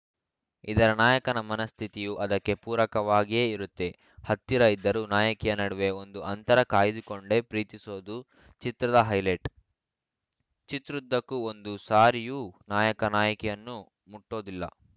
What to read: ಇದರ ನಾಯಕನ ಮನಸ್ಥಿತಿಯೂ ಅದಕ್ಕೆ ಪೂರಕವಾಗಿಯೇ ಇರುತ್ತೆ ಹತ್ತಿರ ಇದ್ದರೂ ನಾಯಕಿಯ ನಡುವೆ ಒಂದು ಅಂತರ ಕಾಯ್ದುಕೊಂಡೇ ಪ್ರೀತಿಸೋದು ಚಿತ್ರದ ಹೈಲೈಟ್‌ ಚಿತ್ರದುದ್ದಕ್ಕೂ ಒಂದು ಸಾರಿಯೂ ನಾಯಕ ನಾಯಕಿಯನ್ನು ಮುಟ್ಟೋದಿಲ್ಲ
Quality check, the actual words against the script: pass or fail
pass